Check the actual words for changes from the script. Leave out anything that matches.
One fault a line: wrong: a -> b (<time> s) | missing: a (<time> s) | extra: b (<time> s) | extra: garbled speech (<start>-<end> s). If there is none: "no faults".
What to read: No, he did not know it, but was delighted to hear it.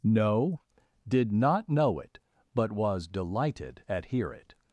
missing: he (0.6 s)
wrong: to -> at (3.9 s)